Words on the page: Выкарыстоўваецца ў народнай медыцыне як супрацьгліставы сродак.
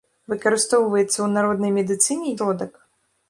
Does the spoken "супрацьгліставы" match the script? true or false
false